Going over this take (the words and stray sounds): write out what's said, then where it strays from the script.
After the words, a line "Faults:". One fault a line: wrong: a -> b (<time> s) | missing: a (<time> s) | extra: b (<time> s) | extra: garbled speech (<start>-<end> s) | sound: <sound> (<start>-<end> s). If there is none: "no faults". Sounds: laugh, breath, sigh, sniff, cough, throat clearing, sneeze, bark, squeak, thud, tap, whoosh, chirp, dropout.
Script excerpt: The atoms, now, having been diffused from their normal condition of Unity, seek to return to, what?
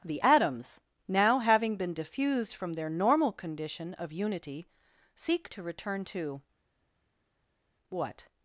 The atoms, now, having been diffused from their normal condition of Unity, seek to return to, what?
Faults:
no faults